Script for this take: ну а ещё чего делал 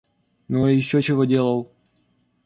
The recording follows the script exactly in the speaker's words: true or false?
true